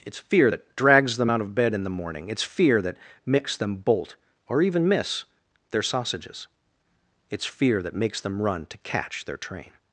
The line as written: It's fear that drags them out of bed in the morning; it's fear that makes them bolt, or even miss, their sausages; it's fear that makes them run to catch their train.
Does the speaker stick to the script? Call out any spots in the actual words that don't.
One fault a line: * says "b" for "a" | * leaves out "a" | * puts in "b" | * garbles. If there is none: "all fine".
all fine